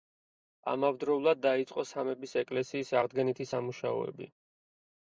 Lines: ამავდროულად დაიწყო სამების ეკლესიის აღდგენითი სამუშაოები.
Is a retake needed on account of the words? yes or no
no